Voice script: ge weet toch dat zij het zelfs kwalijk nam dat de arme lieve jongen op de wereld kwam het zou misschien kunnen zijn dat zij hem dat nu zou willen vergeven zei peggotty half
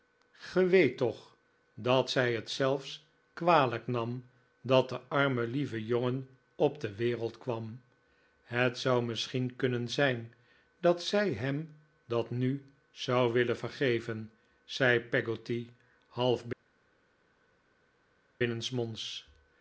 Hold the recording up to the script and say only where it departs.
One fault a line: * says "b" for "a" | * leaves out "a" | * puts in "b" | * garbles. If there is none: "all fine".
all fine